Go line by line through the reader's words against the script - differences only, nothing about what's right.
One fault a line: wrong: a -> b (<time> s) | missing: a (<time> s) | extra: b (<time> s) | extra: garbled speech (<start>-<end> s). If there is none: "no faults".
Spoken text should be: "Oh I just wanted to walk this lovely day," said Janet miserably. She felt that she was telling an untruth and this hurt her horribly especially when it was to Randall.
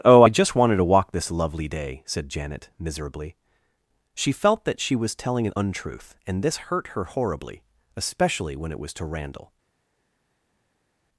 no faults